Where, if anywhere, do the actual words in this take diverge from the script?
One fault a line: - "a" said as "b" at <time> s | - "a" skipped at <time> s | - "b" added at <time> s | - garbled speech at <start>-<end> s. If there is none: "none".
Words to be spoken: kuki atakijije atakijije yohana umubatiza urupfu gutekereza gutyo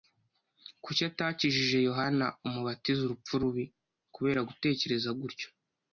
- "atakijije" skipped at 1.8 s
- "rubi kubera" added at 3.4 s